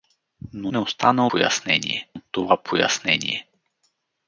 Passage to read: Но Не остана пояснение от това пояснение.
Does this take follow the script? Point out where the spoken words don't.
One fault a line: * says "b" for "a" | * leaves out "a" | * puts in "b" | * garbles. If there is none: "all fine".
all fine